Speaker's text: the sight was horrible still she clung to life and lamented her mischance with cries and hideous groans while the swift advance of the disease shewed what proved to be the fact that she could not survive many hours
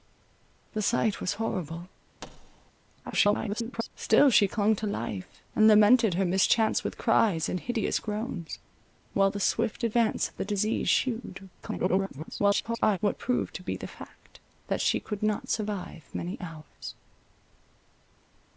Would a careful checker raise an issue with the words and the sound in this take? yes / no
yes